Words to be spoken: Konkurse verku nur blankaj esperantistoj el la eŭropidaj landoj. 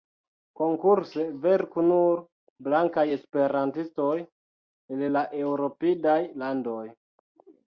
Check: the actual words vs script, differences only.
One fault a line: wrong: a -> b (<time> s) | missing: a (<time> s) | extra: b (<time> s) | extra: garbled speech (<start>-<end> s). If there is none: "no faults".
no faults